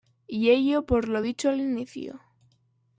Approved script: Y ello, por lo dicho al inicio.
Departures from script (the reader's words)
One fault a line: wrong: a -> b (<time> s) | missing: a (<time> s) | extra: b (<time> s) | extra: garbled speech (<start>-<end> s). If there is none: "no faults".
no faults